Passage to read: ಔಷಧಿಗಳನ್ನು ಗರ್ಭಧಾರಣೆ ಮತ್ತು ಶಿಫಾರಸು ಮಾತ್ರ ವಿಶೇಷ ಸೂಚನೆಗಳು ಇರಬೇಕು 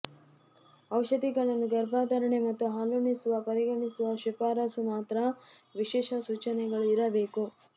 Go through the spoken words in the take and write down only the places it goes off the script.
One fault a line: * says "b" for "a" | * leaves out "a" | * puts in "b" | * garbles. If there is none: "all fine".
* puts in "ಹಾಲುಣಿಸುವ ಪರಿಗಣಿಸುವ"